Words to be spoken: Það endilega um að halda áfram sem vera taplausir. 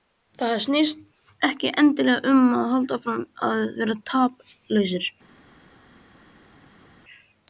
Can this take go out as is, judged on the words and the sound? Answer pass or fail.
fail